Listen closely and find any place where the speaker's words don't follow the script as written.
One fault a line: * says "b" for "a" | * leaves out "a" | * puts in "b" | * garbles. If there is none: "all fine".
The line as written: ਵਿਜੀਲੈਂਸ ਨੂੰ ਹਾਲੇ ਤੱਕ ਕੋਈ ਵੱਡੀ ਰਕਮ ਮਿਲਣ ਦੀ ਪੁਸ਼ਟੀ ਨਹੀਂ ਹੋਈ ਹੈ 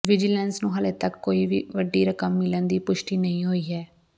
all fine